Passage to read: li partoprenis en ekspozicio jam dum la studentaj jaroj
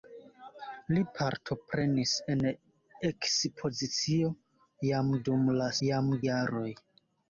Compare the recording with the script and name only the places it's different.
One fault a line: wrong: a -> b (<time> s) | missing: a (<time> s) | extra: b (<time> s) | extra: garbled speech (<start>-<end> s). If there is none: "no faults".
wrong: studentaj -> jam (5.9 s)